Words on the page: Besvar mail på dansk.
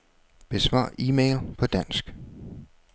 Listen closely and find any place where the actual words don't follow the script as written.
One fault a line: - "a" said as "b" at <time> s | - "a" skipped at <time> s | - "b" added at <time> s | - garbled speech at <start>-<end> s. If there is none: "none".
- "e" added at 1.0 s